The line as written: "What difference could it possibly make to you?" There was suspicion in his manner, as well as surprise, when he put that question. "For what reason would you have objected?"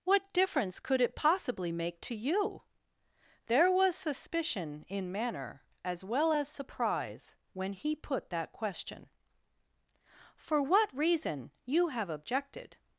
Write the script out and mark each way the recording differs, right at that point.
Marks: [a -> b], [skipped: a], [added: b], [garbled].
"What difference could it possibly make to you?" There was suspicion in [skipped: his] manner, as well as surprise, when he put that question. "For what reason [skipped: would] you have objected?"